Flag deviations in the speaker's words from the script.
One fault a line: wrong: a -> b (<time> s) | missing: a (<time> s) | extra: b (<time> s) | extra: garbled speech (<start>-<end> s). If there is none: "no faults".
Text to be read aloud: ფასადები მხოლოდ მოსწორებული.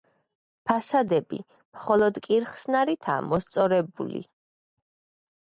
extra: კირხსნარითაა (2.3 s)